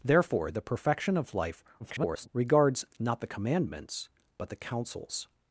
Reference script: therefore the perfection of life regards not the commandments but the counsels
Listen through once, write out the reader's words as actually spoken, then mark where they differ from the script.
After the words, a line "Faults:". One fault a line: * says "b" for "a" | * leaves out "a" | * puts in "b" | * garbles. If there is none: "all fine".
therefore the perfection of life [garbled] regards not the commandments but the counsels
Faults:
* garbles